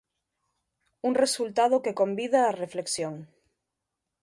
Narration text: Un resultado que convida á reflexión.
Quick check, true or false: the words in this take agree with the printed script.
true